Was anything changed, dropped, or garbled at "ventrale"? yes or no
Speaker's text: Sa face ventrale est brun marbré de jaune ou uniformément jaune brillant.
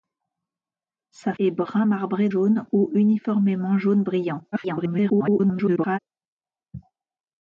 yes